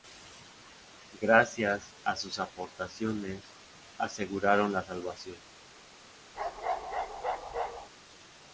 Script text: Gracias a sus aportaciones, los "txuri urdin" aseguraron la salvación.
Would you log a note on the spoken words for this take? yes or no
yes